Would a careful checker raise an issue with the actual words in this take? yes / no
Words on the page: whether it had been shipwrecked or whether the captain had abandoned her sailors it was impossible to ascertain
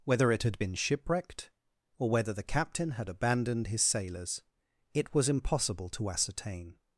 yes